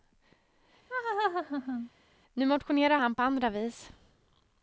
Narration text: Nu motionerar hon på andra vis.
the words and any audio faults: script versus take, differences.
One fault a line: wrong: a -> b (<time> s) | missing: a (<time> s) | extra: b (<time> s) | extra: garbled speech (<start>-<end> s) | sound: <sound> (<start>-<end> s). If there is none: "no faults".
sound: laugh (0.9-1.9 s)
wrong: hon -> han (3.0 s)